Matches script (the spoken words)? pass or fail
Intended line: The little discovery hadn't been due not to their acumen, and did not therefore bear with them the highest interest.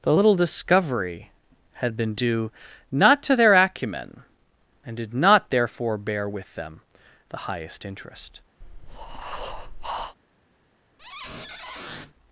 fail